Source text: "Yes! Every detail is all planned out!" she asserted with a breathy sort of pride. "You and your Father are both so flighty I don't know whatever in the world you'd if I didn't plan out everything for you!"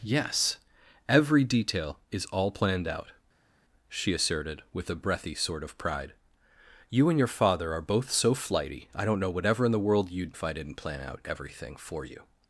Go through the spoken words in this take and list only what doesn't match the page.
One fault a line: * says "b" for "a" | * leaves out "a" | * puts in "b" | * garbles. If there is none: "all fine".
all fine